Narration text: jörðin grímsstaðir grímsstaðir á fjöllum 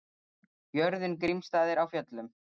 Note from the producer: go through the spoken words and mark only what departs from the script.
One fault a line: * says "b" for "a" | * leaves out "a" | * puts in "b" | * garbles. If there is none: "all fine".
* leaves out "grímsstaðir"